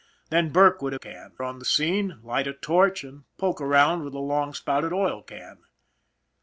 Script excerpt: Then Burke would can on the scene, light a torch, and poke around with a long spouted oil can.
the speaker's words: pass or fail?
pass